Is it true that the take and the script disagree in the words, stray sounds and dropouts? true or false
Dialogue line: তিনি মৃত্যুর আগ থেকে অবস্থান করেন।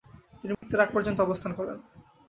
true